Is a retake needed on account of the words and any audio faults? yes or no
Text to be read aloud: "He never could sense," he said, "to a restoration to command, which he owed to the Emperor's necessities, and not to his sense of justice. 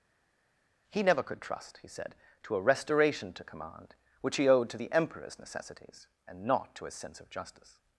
yes